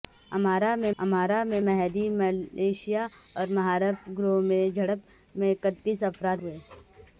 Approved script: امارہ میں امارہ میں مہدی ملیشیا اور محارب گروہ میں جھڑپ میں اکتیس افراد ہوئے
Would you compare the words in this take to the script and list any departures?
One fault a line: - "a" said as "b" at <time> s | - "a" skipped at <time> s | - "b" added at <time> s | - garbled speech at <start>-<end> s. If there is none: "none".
none